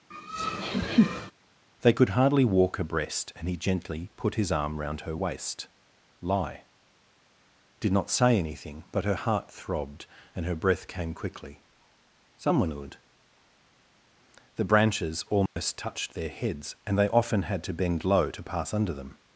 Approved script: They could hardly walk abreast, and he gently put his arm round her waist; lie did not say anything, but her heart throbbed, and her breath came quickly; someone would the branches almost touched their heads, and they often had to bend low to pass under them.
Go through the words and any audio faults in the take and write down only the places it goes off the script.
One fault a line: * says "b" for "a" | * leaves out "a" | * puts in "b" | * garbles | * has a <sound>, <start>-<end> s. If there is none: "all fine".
* has a laugh, 0.1-1.3 s
* has a dropout, 15.5-15.6 s